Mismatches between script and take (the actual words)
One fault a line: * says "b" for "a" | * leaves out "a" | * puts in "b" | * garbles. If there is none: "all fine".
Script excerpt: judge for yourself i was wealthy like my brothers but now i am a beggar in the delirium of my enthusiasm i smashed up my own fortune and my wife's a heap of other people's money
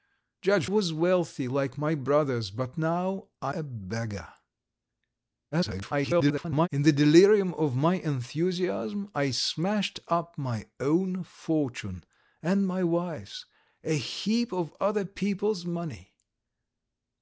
* leaves out "for yourself i"
* leaves out "am"
* garbles